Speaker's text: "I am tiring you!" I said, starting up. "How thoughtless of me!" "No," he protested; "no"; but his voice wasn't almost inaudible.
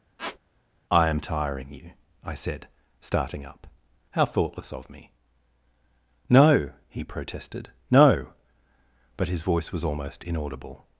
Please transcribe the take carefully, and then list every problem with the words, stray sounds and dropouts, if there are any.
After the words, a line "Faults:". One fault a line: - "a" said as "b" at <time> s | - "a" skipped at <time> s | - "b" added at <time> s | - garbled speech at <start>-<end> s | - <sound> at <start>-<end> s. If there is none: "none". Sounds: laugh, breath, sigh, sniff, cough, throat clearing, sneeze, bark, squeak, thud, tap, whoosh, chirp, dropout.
"I am tiring you!" I said, starting up. "How thoughtless of me!" "No," he protested; "no"; but his voice was almost inaudible.
Faults:
- squeak at 0.2-0.4 s
- "wasn't" said as "was" at 9.7 s